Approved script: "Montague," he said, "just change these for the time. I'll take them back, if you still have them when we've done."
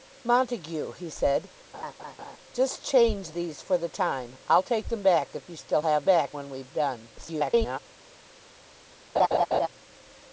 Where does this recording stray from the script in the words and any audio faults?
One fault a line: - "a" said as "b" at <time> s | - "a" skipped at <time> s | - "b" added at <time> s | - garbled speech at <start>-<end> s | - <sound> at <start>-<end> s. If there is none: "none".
- laugh at 1.7-2.4 s
- "them" said as "back" at 6.0 s
- garbled speech at 7.2-7.8 s
- laugh at 9.2-9.7 s